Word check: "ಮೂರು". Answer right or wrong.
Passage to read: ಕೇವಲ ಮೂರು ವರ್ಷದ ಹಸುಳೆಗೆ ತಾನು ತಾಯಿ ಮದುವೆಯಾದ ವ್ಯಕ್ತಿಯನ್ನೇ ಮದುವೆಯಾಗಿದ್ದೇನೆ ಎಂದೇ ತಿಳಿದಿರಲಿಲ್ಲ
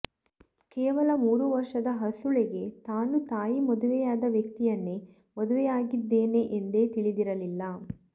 right